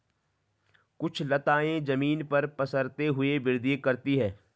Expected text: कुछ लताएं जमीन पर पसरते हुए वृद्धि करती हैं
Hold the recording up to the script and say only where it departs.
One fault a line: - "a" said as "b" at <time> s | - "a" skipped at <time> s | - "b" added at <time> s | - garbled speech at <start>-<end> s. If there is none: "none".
none